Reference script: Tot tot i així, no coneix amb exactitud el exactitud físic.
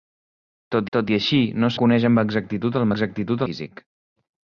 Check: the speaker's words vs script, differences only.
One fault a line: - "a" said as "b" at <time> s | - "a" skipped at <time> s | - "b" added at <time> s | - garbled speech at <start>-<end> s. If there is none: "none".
none